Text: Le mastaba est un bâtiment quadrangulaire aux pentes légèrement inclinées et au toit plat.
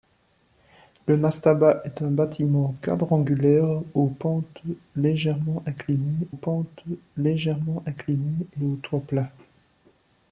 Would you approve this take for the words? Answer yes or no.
no